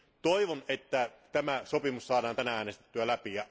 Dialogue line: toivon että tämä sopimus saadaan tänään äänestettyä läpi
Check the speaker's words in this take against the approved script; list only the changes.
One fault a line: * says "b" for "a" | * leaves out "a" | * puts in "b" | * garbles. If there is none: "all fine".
all fine